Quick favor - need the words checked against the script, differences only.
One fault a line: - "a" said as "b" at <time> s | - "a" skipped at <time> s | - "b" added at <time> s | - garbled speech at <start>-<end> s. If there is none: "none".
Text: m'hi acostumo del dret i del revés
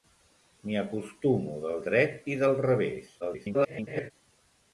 - garbled speech at 3.2-4.1 s